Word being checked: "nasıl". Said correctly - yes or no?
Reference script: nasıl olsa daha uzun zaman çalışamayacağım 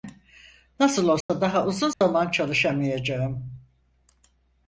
yes